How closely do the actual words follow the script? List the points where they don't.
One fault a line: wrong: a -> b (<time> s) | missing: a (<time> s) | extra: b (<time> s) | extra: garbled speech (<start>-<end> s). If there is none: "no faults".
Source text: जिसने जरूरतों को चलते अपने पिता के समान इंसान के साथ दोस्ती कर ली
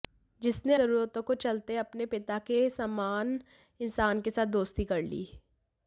no faults